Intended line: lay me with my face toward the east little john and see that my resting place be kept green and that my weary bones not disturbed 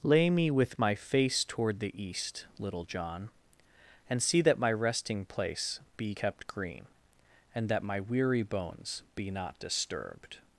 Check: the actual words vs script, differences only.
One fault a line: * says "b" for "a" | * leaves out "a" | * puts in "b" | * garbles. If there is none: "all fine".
* puts in "be"